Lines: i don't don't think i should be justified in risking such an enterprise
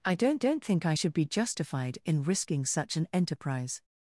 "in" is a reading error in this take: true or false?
false